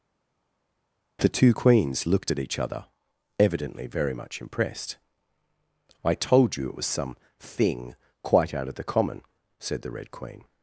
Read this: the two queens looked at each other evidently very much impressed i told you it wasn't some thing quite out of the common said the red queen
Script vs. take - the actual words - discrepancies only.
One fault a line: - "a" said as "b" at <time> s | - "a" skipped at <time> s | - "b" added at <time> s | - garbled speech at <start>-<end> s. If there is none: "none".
- "wasn't" said as "was" at 6.8 s